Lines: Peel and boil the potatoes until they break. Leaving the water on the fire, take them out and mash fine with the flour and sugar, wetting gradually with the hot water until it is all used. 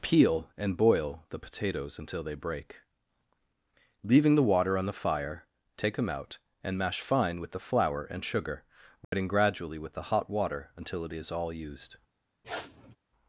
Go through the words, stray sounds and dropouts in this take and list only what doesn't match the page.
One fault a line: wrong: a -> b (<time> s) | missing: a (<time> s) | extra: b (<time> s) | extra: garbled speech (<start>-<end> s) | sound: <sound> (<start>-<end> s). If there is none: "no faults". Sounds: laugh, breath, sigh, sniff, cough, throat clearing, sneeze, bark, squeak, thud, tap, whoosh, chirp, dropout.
sound: dropout (9.0-9.1 s)
sound: sniff (12.4-13.0 s)